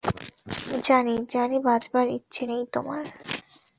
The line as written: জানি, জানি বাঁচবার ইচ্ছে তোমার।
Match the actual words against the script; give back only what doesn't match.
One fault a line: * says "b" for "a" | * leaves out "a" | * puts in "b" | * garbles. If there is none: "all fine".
* puts in "নেই"